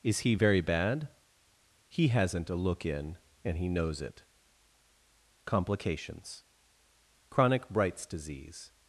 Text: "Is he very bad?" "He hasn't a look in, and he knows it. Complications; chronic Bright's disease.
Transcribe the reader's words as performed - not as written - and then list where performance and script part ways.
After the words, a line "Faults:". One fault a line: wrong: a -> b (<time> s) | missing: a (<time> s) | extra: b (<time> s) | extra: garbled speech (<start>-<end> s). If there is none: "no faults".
"Is he very bad?" "He hasn't a look in, and he knows it. Complications; chronic Bright's disease.
Faults:
no faults